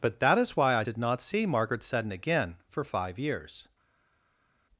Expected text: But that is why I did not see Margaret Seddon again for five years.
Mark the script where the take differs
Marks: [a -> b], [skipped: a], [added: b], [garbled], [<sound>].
But that is why I did not see Margaret Seddon again for five years.